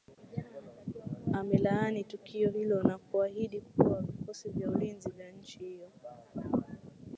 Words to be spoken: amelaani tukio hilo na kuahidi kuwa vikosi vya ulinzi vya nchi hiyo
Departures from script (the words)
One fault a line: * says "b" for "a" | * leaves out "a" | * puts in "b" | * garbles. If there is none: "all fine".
all fine